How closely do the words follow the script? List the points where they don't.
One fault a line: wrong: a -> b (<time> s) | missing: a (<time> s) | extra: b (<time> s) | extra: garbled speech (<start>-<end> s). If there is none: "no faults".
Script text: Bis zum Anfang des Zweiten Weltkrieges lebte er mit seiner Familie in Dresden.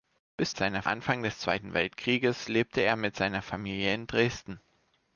wrong: zum -> seiner (0.5 s)